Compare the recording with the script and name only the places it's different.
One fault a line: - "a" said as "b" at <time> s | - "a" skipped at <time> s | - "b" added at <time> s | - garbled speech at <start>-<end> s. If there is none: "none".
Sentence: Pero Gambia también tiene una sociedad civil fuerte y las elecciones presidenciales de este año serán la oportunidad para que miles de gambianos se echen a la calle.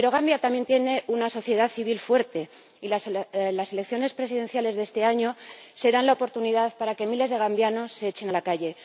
none